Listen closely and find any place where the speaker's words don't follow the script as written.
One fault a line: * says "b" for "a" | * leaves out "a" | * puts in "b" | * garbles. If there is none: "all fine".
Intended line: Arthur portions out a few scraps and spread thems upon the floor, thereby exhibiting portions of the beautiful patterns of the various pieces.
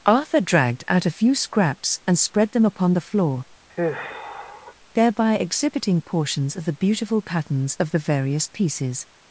* says "dragged" for "portions"
* says "them" for "thems"